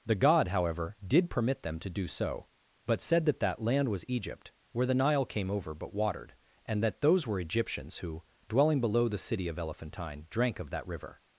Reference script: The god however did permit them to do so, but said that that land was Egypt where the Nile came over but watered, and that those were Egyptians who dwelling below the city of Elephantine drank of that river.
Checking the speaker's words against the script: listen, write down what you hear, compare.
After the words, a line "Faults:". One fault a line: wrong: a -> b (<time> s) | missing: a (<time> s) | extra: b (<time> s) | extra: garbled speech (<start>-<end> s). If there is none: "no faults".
The god however did permit them to do so, but said that that land was Egypt where the Nile came over but watered, and that those were Egyptians who dwelling below the city of Elephantine drank of that river.
Faults:
no faults